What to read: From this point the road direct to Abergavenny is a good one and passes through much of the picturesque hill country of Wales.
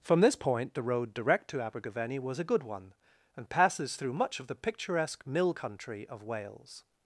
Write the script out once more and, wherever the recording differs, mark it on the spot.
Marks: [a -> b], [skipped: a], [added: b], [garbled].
From this point the road direct to Abergavenny [is -> was] a good one and passes through much of the picturesque [hill -> mill] country of Wales.